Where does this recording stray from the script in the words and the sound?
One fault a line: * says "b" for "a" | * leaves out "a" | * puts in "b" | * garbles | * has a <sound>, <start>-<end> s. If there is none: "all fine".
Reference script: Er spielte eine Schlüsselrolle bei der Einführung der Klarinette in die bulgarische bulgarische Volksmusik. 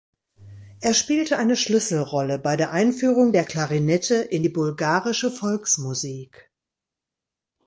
* leaves out "bulgarische"